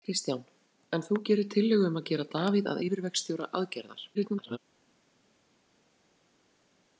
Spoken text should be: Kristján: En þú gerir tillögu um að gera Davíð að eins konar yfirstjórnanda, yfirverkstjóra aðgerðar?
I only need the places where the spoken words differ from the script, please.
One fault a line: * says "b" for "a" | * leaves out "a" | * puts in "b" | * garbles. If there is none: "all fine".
* leaves out "eins konar yfirstjórnanda"
* garbles